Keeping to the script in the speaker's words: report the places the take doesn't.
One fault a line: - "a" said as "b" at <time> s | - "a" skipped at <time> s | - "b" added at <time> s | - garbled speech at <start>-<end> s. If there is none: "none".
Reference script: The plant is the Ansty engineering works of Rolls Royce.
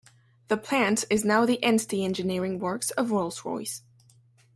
- "now" added at 1.2 s